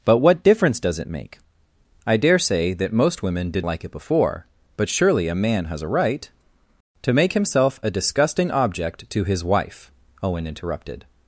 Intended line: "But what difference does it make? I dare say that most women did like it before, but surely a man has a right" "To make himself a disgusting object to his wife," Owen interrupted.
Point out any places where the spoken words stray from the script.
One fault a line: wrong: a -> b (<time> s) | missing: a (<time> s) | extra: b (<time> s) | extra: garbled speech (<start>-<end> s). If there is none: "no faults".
no faults